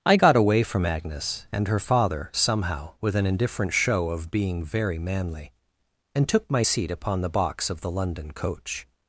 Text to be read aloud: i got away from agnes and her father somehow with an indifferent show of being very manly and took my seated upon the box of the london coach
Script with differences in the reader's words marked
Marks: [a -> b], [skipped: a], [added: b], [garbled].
i got away from agnes and her father somehow with an indifferent show of being very manly and took my [seated -> seat] upon the box of the london coach